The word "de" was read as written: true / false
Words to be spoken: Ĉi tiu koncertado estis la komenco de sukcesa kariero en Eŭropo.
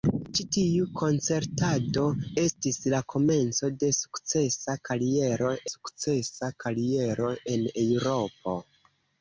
true